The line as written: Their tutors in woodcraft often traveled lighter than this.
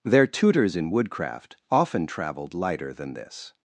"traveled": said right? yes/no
yes